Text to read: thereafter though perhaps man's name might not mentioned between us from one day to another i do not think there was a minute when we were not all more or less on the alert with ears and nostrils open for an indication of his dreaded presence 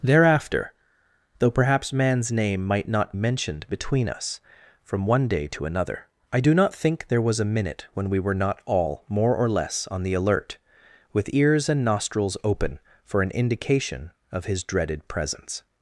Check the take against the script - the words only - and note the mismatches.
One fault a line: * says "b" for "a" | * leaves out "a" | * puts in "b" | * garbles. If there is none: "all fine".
all fine